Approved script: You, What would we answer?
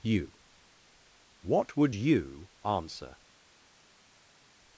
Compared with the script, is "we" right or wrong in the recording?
wrong